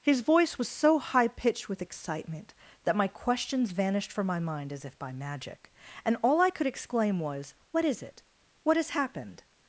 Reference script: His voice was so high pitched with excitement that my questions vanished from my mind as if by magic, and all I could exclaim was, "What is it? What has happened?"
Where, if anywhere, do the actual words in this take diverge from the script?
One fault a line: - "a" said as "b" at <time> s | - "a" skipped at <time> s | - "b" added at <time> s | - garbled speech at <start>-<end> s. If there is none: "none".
none